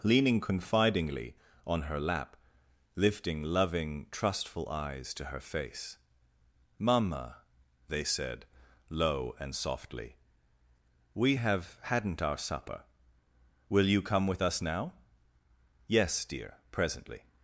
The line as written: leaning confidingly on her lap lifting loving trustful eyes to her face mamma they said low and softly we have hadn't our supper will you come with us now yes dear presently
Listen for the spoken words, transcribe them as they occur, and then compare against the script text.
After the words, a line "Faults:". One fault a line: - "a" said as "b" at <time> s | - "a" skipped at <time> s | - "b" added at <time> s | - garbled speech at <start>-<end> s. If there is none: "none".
leaning confidingly on her lap lifting loving trustful eyes to her face mamma they said low and softly we have hadn't our supper will you come with us now yes dear presently
Faults:
none